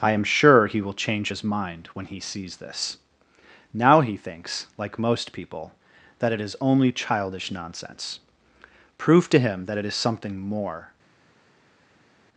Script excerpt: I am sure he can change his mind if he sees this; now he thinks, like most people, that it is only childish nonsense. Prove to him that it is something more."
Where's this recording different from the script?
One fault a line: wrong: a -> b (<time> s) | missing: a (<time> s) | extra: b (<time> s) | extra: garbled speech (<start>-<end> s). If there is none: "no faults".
wrong: can -> will (0.8 s)
wrong: if -> when (1.9 s)